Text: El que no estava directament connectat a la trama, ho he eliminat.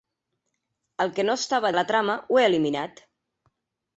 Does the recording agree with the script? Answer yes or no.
no